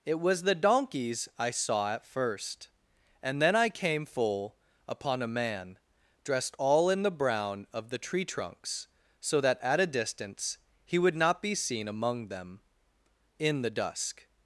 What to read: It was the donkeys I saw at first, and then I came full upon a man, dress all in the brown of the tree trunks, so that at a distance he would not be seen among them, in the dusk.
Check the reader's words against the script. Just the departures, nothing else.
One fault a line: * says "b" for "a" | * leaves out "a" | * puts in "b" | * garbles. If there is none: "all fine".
* says "dressed" for "dress"